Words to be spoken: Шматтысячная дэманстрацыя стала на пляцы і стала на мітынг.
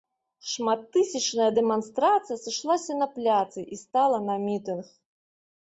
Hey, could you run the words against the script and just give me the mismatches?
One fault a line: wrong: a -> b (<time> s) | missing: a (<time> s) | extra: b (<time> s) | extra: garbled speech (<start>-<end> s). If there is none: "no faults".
wrong: стала -> сышлася (2.4 s)